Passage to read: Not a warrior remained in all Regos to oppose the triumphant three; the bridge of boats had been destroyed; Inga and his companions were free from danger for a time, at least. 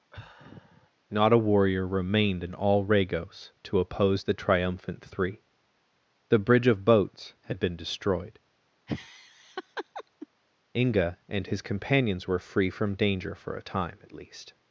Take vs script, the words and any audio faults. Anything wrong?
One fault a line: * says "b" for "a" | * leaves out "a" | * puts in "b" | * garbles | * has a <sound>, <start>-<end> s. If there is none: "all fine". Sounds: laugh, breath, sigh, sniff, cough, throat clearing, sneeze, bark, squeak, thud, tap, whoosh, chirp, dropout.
* has a sigh, 0.1-0.9 s
* has a laugh, 8.9-10.3 s